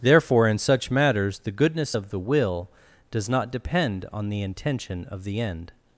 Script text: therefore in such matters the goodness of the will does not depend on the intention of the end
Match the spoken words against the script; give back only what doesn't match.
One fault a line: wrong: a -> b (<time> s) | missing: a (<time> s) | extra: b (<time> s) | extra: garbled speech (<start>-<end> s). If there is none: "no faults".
no faults